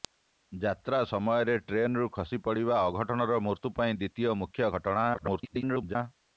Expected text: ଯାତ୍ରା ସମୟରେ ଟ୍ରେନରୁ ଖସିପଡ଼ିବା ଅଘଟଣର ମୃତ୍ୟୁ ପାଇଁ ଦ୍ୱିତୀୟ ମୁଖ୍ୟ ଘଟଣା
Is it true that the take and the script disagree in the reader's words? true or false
true